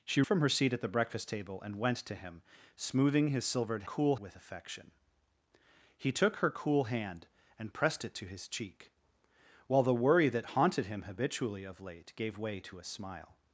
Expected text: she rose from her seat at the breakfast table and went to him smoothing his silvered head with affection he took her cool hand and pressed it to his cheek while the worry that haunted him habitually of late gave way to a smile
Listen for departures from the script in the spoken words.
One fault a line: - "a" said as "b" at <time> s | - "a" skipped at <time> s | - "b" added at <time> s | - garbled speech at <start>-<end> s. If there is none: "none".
- "rose" skipped at 0.2 s
- "head" said as "cool" at 3.8 s